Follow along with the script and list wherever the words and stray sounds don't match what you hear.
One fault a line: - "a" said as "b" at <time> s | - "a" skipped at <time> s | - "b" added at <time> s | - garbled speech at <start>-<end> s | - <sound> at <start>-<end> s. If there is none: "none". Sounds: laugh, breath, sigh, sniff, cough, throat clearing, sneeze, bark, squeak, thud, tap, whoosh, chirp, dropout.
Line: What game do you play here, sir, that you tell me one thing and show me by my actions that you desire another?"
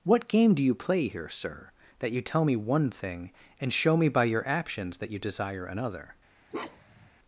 - "my" said as "your" at 4.2 s
- bark at 6.5-7.1 s